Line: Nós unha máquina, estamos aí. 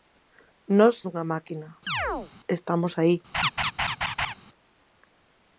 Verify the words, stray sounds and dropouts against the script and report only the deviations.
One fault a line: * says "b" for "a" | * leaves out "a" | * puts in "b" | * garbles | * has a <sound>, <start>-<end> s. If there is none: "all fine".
* has a chirp, 1.9-2.3 s
* has a laugh, 3.3-4.3 s